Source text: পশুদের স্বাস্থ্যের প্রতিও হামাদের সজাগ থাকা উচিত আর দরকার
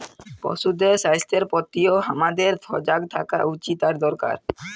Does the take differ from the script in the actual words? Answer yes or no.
no